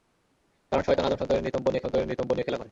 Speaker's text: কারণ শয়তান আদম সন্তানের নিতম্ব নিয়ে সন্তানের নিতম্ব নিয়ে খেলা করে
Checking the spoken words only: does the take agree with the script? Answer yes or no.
yes